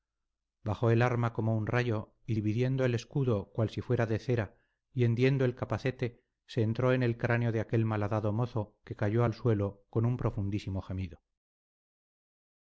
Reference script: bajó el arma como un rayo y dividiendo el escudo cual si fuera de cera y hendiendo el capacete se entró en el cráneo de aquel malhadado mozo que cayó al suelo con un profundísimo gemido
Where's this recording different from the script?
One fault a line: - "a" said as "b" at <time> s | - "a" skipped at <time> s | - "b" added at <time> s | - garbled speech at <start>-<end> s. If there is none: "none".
none